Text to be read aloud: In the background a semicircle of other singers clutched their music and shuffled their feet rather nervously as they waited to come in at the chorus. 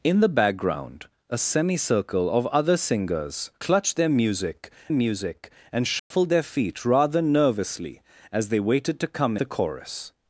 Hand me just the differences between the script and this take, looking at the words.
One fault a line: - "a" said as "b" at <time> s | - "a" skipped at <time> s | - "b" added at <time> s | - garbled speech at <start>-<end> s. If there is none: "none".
- "music" added at 4.9 s
- "in at" skipped at 9.4 s